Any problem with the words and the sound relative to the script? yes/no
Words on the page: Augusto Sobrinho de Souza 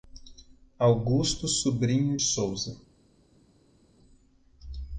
yes